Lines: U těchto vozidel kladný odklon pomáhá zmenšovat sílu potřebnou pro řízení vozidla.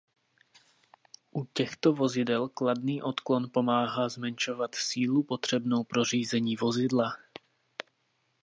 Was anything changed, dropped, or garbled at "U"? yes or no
no